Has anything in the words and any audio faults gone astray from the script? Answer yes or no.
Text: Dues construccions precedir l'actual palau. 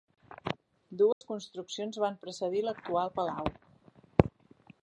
yes